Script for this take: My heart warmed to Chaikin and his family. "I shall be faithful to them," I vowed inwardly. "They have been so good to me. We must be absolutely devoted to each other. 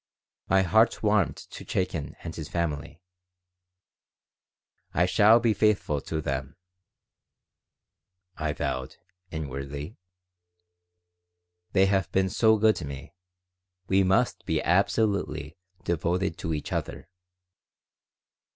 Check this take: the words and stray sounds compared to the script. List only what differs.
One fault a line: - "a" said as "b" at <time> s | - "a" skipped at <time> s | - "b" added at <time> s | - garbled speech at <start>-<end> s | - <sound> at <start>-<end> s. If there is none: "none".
none